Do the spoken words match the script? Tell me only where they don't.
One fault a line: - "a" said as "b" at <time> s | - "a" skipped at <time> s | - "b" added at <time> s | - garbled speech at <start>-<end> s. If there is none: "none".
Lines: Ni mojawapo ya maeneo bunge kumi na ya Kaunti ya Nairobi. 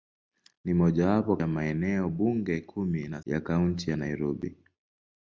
none